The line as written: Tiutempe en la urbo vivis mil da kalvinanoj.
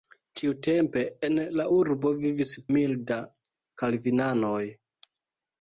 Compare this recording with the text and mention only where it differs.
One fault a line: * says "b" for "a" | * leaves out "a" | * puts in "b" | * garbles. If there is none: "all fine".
all fine